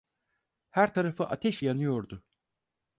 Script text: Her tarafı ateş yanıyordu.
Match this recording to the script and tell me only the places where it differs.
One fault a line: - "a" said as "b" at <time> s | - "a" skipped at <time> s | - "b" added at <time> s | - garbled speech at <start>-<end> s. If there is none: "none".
none